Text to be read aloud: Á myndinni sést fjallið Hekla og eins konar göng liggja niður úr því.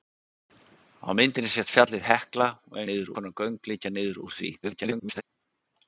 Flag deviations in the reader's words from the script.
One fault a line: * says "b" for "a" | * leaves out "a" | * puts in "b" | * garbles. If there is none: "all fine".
* says "niður" for "eins"
* garbles